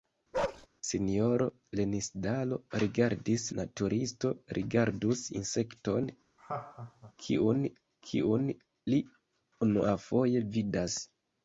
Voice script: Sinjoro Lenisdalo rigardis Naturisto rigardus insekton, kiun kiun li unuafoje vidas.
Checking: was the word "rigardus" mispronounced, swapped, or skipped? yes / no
no